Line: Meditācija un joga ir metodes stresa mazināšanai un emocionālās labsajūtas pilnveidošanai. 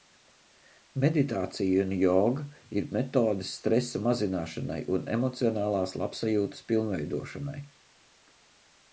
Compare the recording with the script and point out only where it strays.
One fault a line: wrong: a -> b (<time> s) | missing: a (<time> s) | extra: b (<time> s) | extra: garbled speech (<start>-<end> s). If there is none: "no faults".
no faults